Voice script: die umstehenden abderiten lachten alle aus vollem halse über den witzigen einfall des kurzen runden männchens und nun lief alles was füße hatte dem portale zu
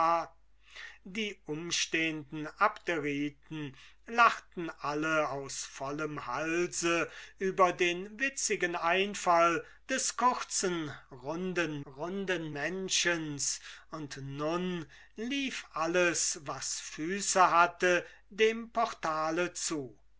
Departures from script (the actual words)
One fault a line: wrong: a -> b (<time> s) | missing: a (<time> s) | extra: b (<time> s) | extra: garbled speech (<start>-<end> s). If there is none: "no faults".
extra: runden (11.9 s)